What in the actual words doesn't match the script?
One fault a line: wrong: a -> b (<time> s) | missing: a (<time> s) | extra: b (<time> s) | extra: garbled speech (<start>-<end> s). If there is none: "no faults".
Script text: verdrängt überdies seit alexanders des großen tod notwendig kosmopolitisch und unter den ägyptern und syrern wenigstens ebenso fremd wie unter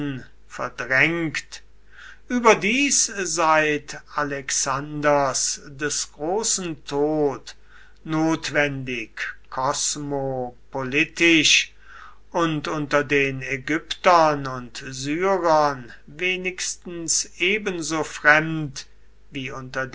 no faults